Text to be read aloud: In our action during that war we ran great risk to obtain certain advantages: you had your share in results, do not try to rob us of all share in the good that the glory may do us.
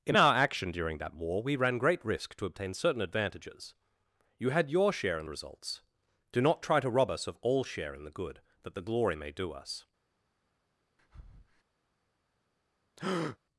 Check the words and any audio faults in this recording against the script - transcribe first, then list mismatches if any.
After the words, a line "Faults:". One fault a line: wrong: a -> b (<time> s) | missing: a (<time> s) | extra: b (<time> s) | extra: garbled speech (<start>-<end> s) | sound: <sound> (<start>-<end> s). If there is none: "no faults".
In our action during that war we ran great risk to obtain certain advantages: you had your share in results, do not try to rob us of all share in the good that the glory may do us.
Faults:
sound: breath (11.0-11.6 s)
sound: breath (13.0-13.4 s)